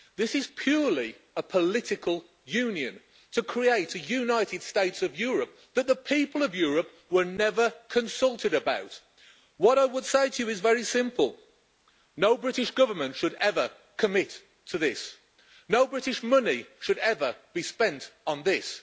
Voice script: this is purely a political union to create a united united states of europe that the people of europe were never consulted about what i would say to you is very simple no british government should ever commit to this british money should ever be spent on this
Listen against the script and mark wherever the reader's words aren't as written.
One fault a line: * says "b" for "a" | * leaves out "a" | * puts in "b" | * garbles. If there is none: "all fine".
* leaves out "united"
* puts in "no"